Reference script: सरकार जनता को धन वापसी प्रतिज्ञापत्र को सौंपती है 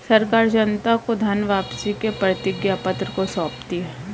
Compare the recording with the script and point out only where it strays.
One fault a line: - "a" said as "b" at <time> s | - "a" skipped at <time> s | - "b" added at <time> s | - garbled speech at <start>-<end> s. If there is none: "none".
- "के" added at 1.9 s